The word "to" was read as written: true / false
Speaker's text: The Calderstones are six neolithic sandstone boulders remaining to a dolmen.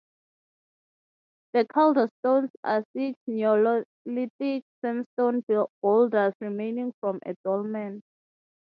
false